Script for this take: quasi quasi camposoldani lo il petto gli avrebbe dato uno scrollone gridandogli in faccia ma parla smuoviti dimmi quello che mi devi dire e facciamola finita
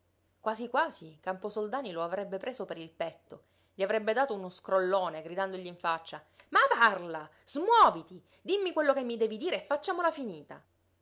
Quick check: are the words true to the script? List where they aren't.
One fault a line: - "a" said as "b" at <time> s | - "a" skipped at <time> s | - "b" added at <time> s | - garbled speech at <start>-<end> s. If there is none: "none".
- "avrebbe preso per" added at 2.0 s